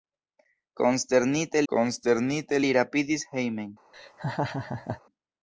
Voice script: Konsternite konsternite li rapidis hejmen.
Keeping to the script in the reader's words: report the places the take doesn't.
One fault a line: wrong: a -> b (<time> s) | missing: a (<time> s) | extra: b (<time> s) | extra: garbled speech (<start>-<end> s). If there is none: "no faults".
no faults